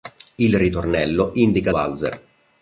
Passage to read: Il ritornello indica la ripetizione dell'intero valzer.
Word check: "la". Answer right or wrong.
wrong